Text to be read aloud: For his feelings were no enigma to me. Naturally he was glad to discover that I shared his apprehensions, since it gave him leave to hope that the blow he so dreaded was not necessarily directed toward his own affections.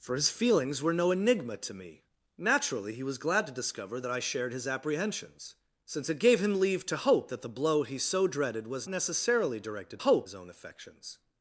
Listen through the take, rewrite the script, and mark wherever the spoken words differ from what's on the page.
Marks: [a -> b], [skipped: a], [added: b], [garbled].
For his feelings were no enigma to me. Naturally he was glad to discover that I shared his apprehensions, since it gave him leave to hope that the blow he so dreaded was [skipped: not] necessarily directed [toward -> hope] his own affections.